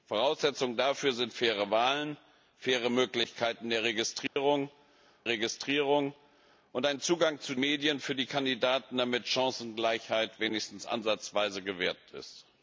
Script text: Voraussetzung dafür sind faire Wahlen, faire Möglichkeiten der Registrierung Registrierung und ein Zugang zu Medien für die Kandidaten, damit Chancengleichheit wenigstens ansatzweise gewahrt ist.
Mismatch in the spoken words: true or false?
false